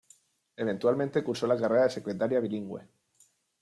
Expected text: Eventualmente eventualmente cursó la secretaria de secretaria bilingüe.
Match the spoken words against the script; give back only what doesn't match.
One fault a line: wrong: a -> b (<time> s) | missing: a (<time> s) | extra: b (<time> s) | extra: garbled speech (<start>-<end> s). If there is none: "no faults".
missing: eventualmente (1.2 s)
wrong: secretaria -> carrera (1.6 s)